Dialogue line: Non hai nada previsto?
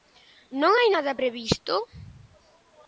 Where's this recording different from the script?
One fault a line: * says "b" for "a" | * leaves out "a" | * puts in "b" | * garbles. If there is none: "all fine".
all fine